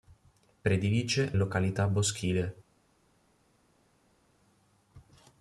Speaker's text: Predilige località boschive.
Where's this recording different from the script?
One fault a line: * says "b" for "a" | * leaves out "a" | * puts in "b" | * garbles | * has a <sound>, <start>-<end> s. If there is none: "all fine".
all fine